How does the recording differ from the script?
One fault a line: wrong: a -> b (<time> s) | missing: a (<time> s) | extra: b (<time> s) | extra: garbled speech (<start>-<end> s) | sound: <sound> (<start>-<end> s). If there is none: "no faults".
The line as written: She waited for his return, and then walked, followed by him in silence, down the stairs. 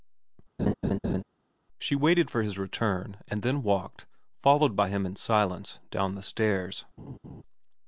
sound: laugh (0.6-1.2 s)
sound: laugh (7.0-7.4 s)